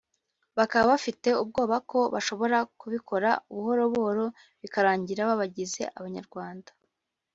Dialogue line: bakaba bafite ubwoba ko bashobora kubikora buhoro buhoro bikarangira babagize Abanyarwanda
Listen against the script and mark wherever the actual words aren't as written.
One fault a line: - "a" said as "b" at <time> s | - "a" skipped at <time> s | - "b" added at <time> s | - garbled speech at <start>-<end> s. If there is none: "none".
none